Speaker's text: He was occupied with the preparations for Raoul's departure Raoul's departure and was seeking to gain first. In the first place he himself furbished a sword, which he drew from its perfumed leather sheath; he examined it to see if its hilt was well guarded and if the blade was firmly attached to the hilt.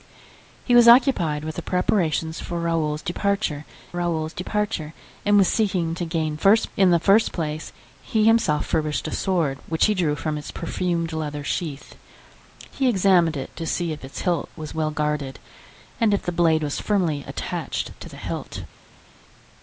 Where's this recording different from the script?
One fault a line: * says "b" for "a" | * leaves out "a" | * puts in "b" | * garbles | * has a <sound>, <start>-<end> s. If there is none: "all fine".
all fine